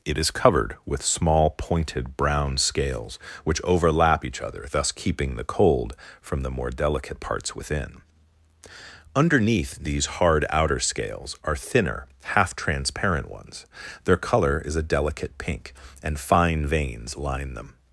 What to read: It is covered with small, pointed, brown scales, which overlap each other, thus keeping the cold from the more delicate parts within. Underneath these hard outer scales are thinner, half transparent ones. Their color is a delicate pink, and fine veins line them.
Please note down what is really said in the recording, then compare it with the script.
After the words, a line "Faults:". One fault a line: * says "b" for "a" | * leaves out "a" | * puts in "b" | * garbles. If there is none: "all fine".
It is covered with small, pointed, brown scales, which overlap each other, thus keeping the cold from the more delicate parts within. Underneath these hard outer scales are thinner, half transparent ones. Their color is a delicate pink, and fine veins line them.
Faults:
all fine